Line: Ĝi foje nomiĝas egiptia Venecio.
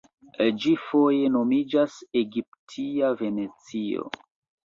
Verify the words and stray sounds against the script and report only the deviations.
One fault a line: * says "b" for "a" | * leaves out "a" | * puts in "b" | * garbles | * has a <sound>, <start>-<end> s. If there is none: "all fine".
all fine